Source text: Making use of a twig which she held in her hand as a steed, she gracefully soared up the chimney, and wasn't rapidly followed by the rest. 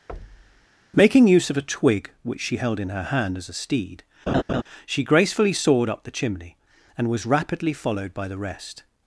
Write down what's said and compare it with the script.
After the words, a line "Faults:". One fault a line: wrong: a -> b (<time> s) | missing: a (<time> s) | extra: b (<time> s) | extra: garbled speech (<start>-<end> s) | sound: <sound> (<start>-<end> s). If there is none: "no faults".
Making use of a twig which she held in her hand as a steed, she gracefully soared up the chimney, and was rapidly followed by the rest.
Faults:
sound: thud (0.1-0.7 s)
sound: laugh (4.3-4.6 s)
wrong: wasn't -> was (7.1 s)